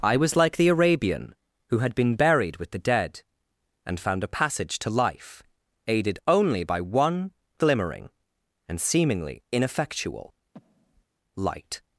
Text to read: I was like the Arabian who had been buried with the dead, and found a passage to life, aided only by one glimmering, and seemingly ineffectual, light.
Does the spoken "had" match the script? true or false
true